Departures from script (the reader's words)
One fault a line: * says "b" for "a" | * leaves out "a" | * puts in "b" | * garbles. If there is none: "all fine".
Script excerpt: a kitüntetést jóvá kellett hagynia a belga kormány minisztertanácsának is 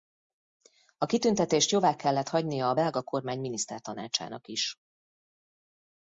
all fine